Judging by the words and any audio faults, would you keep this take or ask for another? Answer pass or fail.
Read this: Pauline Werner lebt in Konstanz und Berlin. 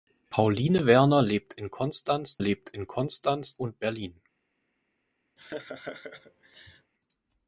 fail